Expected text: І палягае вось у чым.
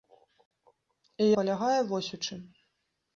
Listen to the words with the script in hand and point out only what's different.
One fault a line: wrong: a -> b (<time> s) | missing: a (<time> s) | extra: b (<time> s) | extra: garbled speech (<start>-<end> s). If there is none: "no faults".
no faults